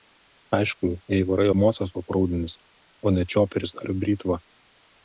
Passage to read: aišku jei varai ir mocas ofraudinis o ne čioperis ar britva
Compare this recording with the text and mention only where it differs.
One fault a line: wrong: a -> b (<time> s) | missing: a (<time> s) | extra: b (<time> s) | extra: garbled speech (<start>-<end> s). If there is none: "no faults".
no faults